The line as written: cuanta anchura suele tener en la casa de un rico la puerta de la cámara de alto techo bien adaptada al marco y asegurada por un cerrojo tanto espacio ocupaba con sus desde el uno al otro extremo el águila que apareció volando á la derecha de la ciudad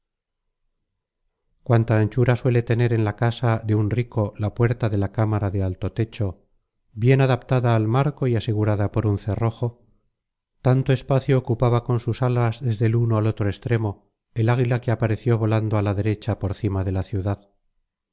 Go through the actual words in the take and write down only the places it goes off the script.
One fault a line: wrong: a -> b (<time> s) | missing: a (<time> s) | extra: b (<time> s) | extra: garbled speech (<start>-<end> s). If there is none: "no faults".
extra: alas (12.2 s)
extra: por cima (16.4 s)